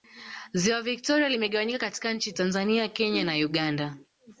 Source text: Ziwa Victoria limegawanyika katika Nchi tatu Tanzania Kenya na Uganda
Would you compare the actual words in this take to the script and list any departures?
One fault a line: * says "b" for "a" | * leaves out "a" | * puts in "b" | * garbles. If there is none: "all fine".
* leaves out "tatu"